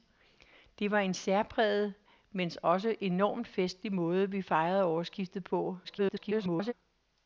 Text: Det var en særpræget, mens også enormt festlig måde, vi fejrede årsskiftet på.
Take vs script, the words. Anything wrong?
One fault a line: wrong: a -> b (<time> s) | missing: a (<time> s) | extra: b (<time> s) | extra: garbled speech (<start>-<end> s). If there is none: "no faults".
extra: garbled speech (5.8-6.7 s)